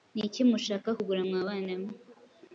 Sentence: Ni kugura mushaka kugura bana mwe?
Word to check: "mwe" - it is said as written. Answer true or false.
true